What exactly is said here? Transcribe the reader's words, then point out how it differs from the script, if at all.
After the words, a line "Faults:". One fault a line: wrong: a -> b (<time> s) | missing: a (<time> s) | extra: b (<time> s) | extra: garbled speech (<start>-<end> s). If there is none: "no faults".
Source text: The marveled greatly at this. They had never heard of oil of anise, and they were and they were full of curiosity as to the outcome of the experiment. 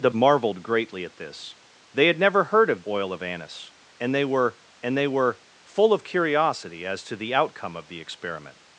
The marveled greatly at this. They had never heard of oil of anise, and they were and they were full of curiosity as to the outcome of the experiment.
Faults:
no faults